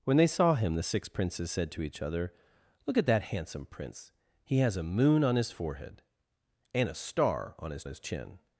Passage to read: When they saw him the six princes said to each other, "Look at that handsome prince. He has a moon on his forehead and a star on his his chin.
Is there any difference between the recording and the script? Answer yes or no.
no